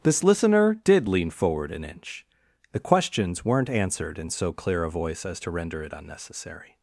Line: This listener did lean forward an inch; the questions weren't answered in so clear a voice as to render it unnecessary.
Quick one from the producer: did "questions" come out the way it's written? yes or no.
yes